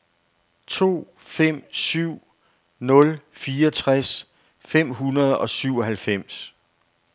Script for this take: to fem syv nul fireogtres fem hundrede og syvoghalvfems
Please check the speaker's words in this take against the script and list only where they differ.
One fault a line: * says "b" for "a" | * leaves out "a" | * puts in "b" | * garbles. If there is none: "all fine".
all fine